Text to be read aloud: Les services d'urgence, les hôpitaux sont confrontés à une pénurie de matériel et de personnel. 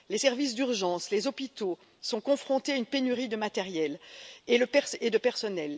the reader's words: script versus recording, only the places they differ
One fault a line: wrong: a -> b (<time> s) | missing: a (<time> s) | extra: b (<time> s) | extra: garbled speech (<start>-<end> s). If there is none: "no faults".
no faults